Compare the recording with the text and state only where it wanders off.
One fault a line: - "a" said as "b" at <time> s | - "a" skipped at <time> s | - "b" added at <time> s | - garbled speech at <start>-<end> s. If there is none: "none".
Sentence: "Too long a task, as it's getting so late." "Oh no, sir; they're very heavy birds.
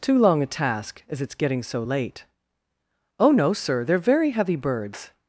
none